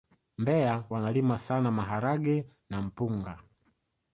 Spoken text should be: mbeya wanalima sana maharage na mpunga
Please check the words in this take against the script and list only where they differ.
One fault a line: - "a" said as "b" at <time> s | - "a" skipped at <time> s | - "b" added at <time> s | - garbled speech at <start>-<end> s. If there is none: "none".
none